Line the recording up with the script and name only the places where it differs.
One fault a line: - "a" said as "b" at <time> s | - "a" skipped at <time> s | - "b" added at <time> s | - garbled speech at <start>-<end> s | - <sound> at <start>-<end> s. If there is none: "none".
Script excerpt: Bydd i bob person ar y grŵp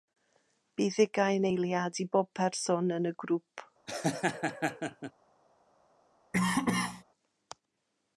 - "ugain eiliad" added at 1.0 s
- "ar" said as "yn" at 3.0 s
- laugh at 3.9-5.1 s
- cough at 6.3-7.0 s